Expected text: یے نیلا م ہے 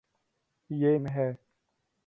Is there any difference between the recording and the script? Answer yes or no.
yes